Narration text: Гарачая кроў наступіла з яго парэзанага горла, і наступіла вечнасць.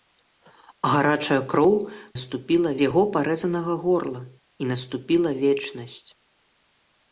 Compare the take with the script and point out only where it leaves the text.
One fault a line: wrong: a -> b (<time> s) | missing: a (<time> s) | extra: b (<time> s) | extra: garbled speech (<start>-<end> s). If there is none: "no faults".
no faults